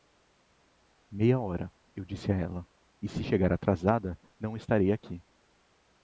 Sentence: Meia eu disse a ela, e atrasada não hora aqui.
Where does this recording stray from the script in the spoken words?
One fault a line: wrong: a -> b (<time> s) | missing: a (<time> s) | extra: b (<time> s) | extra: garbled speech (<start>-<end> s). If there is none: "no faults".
extra: hora (1.4 s)
extra: se chegar (3.1 s)
wrong: hora -> estarei (4.6 s)